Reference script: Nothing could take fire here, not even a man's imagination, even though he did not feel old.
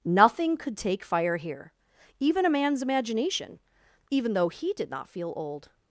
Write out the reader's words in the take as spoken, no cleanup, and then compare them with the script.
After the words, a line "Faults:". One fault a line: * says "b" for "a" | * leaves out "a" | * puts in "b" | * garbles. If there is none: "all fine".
Nothing could take fire here, even a man's imagination, even though he did not feel old.
Faults:
* leaves out "not"